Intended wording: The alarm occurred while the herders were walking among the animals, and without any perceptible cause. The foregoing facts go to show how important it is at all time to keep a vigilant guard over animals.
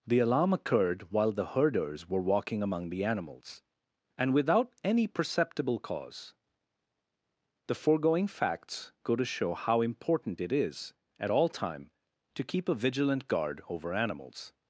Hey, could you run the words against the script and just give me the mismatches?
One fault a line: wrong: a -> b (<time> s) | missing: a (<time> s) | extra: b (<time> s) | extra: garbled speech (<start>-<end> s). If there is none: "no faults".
no faults